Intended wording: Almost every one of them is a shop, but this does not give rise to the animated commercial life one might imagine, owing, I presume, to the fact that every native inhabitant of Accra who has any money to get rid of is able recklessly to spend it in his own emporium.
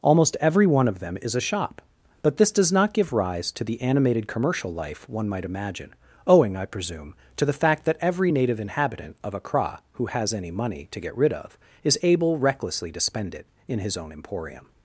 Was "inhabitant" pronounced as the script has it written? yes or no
yes